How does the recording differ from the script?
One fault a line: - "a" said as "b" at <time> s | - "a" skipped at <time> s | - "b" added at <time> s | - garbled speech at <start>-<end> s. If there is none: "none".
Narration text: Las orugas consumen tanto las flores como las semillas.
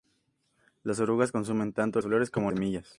- "las" skipped at 2.0 s
- "las" skipped at 2.5 s